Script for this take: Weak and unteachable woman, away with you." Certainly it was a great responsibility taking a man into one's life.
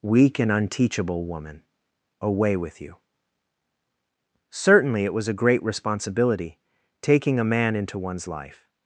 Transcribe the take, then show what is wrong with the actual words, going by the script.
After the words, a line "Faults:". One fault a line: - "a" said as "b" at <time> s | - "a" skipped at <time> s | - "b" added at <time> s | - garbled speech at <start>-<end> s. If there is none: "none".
Weak and unteachable woman, away with you." Certainly it was a great responsibility taking a man into one's life.
Faults:
none